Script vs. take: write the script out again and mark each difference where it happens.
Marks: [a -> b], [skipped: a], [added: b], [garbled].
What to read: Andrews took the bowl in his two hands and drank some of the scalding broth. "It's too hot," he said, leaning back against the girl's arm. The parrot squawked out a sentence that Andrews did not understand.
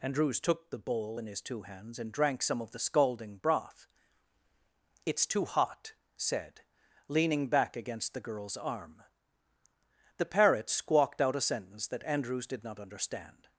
Andrews took the bowl in his two hands and drank some of the scalding broth. "It's too hot," [skipped: he] said, leaning back against the girl's arm. The parrot squawked out a sentence that Andrews did not understand.